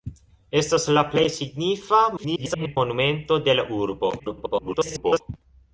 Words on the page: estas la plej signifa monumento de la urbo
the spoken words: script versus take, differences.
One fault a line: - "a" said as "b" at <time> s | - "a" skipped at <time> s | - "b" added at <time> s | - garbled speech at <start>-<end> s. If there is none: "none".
- garbled speech at 2.2-2.8 s
- garbled speech at 4.2-5.2 s